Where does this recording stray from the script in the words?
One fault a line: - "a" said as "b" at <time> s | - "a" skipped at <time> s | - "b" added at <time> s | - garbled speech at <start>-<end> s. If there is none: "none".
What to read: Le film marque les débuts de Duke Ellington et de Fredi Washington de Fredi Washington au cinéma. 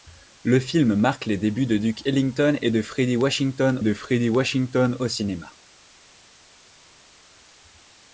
none